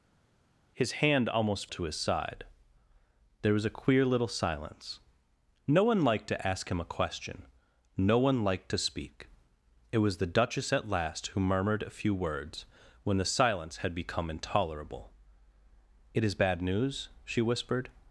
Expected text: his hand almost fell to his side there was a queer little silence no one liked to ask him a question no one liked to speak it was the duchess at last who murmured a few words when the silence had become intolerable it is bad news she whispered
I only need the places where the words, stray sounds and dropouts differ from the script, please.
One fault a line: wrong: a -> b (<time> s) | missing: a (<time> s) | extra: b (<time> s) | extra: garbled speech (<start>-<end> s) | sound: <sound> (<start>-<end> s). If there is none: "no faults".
missing: fell (1.7 s)